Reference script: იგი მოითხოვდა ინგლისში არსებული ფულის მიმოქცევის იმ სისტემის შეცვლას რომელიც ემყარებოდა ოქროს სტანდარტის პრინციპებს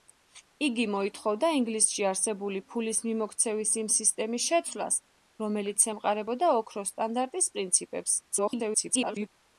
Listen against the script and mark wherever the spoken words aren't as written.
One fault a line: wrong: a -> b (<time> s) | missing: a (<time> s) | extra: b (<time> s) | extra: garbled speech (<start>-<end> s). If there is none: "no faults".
extra: garbled speech (8.3-9.3 s)